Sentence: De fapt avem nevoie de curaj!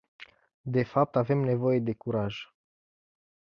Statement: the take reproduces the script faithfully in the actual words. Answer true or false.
true